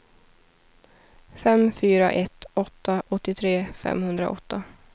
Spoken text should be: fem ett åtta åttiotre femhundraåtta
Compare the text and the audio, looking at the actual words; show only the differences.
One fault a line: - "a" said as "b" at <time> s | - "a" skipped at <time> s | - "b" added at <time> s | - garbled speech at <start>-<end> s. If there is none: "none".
- "fyra" added at 1.7 s